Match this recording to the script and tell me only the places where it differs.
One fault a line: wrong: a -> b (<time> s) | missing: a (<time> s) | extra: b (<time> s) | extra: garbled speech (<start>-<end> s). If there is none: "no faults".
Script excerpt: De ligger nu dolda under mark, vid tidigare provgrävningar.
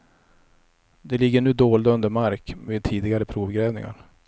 no faults